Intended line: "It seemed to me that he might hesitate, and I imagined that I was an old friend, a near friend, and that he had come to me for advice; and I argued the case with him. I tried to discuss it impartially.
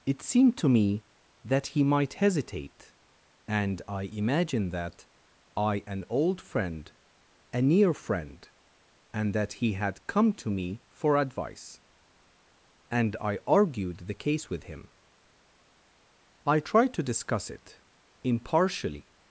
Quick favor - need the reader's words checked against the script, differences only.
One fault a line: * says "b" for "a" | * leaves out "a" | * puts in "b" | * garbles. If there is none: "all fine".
* leaves out "was"